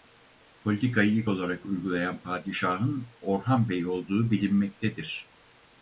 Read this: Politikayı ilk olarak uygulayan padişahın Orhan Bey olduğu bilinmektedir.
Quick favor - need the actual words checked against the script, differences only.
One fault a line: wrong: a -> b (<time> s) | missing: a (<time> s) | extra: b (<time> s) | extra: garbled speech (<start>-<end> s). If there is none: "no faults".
no faults